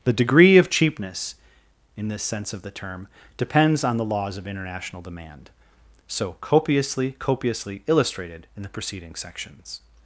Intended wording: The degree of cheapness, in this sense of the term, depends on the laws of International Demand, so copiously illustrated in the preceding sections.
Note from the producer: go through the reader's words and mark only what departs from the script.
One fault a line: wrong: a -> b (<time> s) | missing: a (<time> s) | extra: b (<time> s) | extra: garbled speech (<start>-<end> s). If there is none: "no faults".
extra: copiously (7.2 s)